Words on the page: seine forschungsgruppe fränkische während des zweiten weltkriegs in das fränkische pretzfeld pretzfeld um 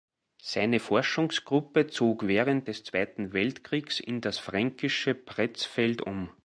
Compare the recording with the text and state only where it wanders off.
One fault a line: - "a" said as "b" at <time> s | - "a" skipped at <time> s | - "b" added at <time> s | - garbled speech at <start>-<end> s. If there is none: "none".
- "fränkische" said as "zog" at 1.9 s
- "pretzfeld" skipped at 6.0 s